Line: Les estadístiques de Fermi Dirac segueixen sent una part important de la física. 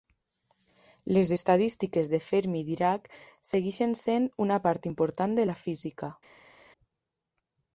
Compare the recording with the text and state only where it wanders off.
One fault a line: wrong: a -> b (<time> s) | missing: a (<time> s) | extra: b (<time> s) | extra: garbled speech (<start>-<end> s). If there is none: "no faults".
no faults